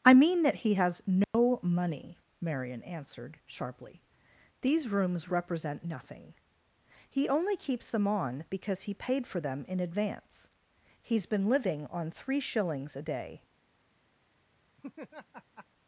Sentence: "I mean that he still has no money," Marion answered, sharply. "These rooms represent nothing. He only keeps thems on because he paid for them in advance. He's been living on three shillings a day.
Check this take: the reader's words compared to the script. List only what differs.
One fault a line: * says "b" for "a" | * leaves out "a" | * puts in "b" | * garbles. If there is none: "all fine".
* leaves out "still"
* says "them" for "thems"